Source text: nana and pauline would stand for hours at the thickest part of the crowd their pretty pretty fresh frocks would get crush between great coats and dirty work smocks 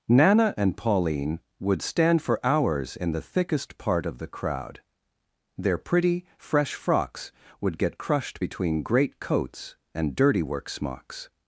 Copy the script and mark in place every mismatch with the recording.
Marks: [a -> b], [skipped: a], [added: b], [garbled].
nana and pauline would stand for hours [at -> in] the thickest part of the crowd their pretty [skipped: pretty] fresh frocks would get [crush -> crushed] between great coats and dirty work smocks